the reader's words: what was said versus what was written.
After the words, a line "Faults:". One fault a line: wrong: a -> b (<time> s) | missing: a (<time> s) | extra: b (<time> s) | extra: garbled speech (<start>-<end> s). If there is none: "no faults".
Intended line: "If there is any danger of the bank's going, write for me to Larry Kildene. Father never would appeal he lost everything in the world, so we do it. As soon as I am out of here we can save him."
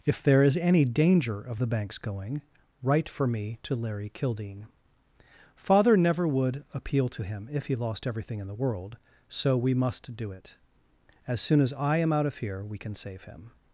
"If there is any danger of the bank's going, write for me to Larry Kildene. Father never would appeal to him if he lost everything in the world, so we must do it. As soon as I am out of here we can save him."
Faults:
extra: to him if (7.1 s)
extra: must (9.7 s)